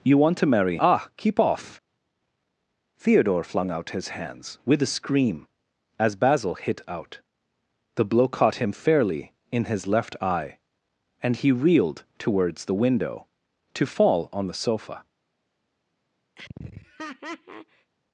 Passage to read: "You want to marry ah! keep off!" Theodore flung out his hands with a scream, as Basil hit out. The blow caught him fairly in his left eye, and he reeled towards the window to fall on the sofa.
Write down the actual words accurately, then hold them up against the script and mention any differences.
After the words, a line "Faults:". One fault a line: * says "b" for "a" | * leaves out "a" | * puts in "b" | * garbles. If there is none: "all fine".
"You want to marry ah! keep off!" Theodore flung out his hands with a scream, as Basil hit out. The blow caught him fairly in his left eye, and he reeled towards the window to fall on the sofa.
Faults:
all fine